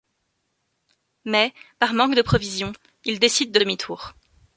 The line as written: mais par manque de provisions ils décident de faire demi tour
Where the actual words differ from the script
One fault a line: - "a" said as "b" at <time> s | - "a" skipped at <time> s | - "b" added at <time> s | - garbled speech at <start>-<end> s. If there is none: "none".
- "faire" skipped at 3.6 s